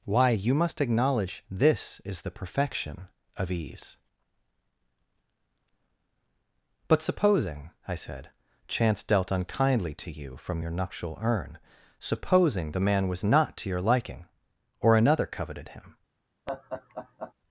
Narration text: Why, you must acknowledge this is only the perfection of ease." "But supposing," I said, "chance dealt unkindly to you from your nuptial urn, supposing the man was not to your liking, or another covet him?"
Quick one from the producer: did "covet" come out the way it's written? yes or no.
no